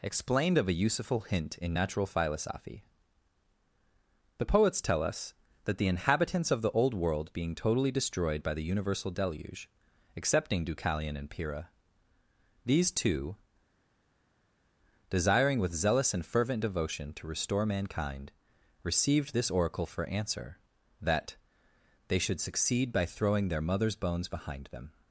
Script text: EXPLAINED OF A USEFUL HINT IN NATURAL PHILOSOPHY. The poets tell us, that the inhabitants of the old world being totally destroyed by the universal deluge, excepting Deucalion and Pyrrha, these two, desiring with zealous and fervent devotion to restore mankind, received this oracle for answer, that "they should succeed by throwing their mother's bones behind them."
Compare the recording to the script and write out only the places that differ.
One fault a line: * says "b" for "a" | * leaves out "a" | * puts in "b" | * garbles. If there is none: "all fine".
all fine